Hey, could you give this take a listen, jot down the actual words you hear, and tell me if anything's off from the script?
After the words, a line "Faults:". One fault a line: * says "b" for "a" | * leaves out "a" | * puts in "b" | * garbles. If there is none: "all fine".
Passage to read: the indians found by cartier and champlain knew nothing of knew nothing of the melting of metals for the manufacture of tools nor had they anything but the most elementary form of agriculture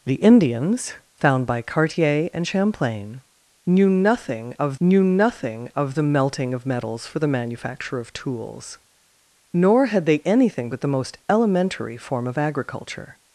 the indians found by cartier and champlain knew nothing of knew nothing of the melting of metals for the manufacture of tools nor had they anything but the most elementary form of agriculture
Faults:
all fine